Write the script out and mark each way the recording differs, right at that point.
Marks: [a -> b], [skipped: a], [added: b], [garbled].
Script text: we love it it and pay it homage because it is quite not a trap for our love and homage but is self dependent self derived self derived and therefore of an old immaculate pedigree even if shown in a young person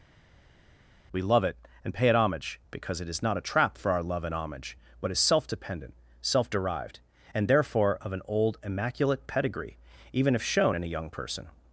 we love it [skipped: it] and pay it homage because it is [skipped: quite] not a trap for our love and homage but is self dependent self derived [skipped: self derived] and therefore of an old immaculate pedigree even if shown in a young person